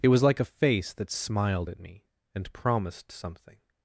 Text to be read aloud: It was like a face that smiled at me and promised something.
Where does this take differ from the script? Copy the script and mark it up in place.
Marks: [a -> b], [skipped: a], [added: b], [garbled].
It was like a face that smiled at me and promised something.